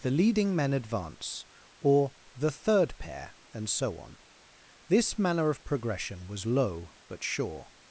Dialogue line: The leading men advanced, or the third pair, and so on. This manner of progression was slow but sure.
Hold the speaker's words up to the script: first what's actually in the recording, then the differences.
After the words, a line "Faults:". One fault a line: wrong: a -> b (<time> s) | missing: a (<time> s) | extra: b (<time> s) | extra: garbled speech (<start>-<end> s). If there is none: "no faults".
The leading men advance, or the third pair, and so on. This manner of progression was low but sure.
Faults:
wrong: advanced -> advance (0.7 s)
wrong: slow -> low (6.5 s)